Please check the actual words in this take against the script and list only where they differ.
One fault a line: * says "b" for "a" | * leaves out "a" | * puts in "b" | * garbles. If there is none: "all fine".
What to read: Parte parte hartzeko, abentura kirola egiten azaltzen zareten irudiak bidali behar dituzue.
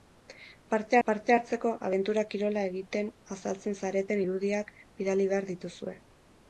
all fine